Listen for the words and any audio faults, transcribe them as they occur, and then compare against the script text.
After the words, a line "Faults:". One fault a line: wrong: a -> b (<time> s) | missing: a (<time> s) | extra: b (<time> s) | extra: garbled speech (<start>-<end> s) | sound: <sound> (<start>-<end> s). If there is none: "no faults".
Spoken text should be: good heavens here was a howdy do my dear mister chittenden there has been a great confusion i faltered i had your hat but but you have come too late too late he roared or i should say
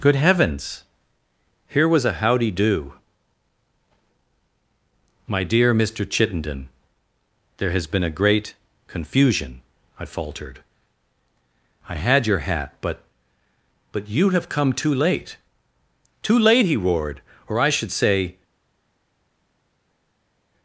good heavens here was a howdy do my dear mister chittenden there has been a great confusion i faltered i had your hat but but you have come too late too late he roared or i should say
Faults:
no faults